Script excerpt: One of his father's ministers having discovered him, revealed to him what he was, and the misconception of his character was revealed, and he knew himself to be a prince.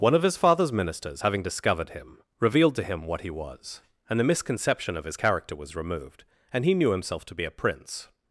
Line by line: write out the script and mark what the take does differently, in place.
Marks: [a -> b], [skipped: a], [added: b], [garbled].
One of his father's ministers having discovered him, revealed to him what he was, and the misconception of his character was [revealed, -> removed] and he knew himself to be a prince.